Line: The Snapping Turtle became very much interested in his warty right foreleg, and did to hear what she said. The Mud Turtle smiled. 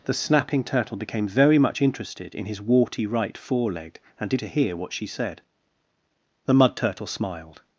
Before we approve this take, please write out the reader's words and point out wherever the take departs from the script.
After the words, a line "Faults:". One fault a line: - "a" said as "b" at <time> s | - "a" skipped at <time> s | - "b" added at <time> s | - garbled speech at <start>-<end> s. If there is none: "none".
The Snapping Turtle became very much interested in his warty right foreleg, and did to hear what she said. The Mud Turtle smiled.
Faults:
none